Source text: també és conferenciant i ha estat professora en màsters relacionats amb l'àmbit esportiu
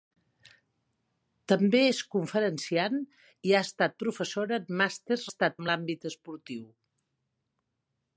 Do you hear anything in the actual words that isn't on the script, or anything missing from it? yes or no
yes